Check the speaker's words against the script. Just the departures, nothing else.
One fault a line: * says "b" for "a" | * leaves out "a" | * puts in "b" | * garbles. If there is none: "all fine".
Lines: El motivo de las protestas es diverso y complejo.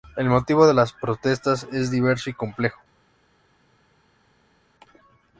all fine